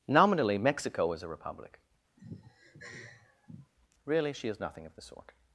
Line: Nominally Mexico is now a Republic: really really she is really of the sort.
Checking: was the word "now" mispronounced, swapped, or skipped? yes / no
yes